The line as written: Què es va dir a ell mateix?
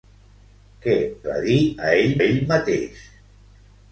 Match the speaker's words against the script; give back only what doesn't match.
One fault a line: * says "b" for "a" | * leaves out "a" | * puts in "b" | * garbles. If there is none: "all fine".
* leaves out "es"
* puts in "ell"